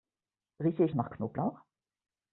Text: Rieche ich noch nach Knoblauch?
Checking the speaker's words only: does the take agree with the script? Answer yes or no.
no